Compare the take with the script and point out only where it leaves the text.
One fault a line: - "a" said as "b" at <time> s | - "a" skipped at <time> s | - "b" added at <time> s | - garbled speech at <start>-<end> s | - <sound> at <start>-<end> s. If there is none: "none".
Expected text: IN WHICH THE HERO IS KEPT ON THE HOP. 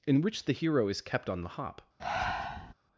- breath at 2.0-2.7 s